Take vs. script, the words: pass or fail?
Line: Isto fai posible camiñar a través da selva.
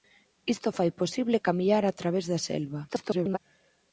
fail